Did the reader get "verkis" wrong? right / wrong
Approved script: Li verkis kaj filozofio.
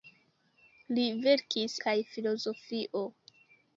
right